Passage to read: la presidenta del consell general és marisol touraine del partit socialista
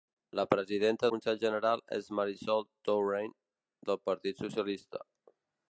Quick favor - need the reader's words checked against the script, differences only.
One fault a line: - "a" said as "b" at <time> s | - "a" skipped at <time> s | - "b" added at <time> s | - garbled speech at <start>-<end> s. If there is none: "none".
- "del" skipped at 1.1 s